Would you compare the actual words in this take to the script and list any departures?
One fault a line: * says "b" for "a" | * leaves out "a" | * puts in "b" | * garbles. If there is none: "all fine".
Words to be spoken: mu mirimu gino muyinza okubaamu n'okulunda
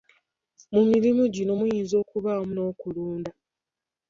all fine